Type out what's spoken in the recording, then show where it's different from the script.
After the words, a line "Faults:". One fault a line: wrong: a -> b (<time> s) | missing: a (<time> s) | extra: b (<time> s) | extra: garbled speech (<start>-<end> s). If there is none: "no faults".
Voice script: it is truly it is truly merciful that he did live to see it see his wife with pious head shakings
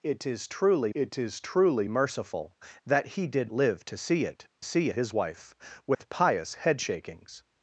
it is truly it is truly merciful that he did live to see it see his wife with pious head shakings
Faults:
no faults